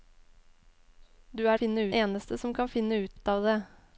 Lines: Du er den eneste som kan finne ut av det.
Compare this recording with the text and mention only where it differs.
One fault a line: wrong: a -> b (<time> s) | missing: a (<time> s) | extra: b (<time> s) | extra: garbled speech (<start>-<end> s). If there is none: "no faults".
wrong: den -> finne (1.6 s)
extra: ut (3.1 s)